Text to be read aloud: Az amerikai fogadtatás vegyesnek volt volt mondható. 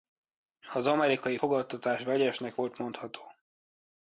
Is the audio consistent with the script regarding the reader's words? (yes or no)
no